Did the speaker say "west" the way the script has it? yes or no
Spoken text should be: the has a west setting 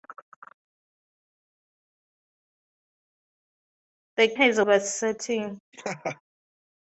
yes